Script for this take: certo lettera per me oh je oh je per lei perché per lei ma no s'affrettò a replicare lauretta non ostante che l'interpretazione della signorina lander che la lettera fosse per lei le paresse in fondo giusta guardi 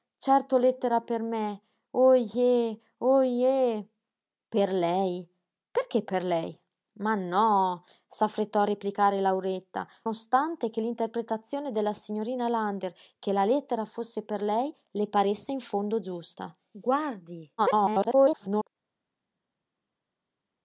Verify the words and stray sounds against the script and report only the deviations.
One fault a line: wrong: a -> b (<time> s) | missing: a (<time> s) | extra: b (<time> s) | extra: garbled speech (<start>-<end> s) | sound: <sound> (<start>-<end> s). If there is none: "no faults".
missing: non (9.9 s)
extra: garbled speech (17.6-18.7 s)